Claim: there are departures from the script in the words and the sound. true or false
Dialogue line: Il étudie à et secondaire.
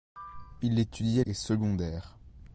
false